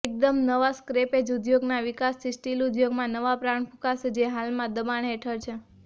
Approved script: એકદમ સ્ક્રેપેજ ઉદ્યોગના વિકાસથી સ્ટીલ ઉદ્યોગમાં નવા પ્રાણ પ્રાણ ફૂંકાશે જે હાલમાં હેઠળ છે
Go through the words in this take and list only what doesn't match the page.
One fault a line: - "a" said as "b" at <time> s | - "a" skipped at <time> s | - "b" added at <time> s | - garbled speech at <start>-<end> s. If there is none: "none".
- "નવા" added at 0.4 s
- "પ્રાણ" skipped at 3.7 s
- "દબાણ" added at 4.8 s